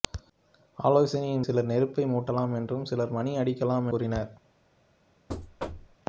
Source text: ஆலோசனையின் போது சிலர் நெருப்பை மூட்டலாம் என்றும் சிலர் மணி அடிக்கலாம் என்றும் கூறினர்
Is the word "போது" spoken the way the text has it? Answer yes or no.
no